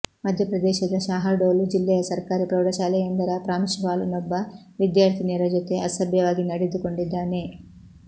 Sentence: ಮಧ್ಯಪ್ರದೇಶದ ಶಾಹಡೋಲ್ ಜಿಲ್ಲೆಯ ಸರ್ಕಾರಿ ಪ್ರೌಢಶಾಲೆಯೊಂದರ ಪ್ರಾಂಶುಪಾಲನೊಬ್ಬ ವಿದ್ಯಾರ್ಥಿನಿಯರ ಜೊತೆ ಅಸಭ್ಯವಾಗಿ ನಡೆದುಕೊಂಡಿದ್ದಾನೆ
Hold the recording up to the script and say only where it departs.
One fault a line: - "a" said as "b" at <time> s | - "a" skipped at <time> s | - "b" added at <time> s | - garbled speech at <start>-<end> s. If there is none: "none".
none